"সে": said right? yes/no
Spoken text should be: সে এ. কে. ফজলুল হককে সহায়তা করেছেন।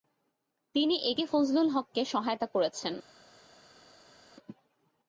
no